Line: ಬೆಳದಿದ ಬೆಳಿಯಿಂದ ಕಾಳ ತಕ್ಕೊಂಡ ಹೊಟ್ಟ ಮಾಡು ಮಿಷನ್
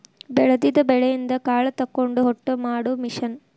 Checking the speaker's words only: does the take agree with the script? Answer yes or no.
yes